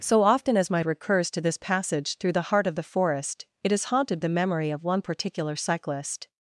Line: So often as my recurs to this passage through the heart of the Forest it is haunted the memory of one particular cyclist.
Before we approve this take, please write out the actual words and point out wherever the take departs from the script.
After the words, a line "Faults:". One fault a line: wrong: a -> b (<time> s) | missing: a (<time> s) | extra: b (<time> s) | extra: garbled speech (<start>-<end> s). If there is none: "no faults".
So often as my recurs to this passage through the heart of the Forest it is haunted the memory of one particular cyclist.
Faults:
no faults